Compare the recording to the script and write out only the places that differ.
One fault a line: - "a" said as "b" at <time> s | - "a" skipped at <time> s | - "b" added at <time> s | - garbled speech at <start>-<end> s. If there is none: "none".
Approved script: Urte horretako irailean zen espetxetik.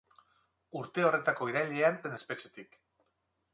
none